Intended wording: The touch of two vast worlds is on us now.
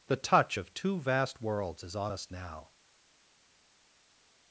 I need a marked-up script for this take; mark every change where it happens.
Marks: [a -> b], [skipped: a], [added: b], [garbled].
The touch of two vast worlds is on us now.